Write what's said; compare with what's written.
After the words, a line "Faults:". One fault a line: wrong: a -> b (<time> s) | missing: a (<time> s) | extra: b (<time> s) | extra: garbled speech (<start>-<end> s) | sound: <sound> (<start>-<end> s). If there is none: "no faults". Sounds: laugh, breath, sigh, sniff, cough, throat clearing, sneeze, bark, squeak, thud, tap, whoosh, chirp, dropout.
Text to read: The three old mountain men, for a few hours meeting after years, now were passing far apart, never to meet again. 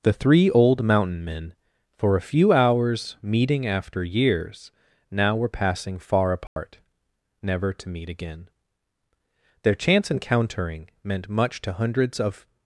The three old mountain men, for a few hours meeting after years, now were passing far apart, never to meet again. Their chance encountering meant much to hundreds of
Faults:
sound: dropout (6.5-6.6 s)
extra: Their chance encountering meant much to hundreds of (9.6 s)